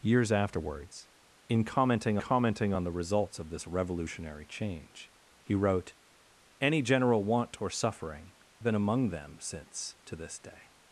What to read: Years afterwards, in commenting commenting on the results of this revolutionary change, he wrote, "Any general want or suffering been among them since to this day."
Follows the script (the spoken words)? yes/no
yes